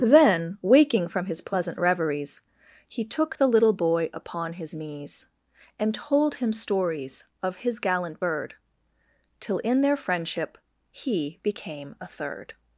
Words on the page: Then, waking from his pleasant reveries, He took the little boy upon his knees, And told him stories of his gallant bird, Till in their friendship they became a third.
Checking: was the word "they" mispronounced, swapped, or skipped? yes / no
yes